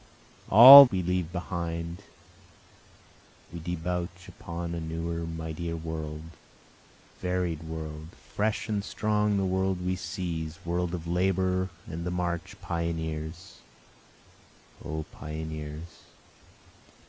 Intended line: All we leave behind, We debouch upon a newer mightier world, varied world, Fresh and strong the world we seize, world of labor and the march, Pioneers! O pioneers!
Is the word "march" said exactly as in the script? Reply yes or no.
yes